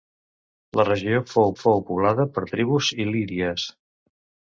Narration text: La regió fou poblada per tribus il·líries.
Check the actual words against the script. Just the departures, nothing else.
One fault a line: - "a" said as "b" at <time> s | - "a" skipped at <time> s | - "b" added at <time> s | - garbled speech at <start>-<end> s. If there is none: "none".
- "fou" added at 1.6 s